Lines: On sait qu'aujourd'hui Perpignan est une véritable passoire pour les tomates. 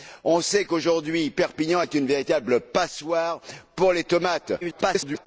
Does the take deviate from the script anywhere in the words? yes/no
yes